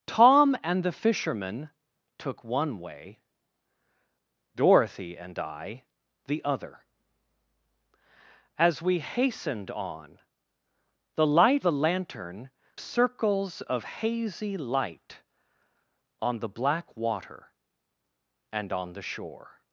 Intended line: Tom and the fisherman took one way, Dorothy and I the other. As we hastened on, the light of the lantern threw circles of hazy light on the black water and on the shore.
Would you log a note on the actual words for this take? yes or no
yes